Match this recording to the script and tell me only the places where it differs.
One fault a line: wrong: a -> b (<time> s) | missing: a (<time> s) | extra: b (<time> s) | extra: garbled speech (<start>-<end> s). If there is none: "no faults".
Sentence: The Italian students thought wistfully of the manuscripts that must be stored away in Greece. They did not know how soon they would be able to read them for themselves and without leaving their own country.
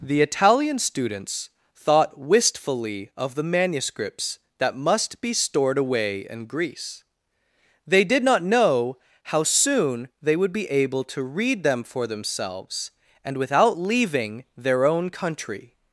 no faults